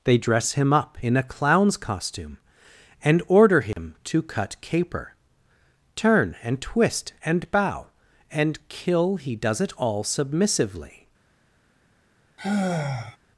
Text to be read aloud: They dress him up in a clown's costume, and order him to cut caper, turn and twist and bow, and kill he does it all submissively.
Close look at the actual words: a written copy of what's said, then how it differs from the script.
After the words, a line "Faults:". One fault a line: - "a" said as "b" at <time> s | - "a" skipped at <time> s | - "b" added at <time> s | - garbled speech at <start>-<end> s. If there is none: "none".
They dress him up in a clown's costume, and order him to cut caper, turn and twist and bow, and kill he does it all submissively.
Faults:
none